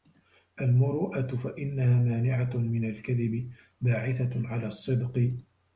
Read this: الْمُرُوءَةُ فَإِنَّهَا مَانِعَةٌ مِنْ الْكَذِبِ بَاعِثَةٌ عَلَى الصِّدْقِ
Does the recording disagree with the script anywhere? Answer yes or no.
no